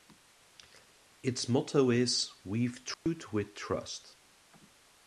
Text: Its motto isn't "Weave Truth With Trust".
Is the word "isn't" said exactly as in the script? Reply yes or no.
no